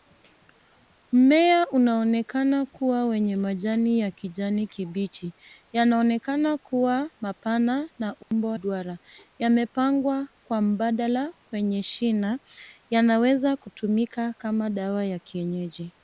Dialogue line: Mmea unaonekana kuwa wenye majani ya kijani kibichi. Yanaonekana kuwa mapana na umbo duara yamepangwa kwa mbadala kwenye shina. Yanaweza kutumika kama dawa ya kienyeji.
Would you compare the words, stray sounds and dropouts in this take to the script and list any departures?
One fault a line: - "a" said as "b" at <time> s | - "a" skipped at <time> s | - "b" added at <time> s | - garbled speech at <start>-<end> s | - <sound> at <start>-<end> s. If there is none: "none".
- dropout at 8.2-8.3 s